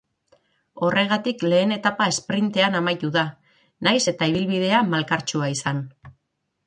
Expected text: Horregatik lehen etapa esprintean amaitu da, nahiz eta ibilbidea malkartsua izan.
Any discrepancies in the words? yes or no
no